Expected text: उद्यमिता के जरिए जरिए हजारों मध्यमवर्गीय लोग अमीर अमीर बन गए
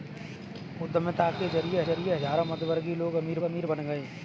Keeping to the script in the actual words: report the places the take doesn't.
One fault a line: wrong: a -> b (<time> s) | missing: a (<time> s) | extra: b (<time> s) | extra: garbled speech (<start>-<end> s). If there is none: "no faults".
no faults